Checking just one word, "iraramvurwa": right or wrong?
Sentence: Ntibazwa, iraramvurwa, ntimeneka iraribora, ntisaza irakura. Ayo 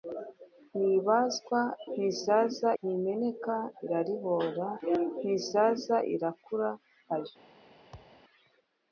wrong